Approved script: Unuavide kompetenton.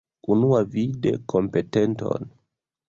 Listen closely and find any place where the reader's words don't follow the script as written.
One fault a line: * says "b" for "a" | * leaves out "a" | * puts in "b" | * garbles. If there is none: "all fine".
all fine